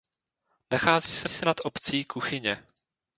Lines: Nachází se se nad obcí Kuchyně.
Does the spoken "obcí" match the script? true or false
true